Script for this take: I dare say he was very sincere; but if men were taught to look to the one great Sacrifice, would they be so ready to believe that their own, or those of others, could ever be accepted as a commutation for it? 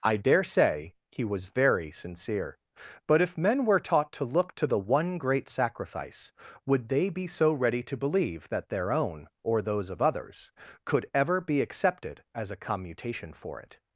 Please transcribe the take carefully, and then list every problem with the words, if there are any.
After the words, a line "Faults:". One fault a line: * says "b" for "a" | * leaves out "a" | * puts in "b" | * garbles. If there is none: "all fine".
I dare say he was very sincere; but if men were taught to look to the one great Sacrifice, would they be so ready to believe that their own, or those of others, could ever be accepted as a commutation for it?
Faults:
all fine